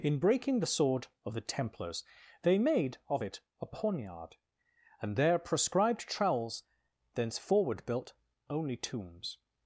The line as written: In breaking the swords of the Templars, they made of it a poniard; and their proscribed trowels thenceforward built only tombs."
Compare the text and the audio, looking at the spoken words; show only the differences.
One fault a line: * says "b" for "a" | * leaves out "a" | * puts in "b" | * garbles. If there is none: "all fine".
* says "sword" for "swords"